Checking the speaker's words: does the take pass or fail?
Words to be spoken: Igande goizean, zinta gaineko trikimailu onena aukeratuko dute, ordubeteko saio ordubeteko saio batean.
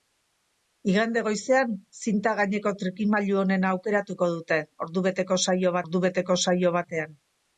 pass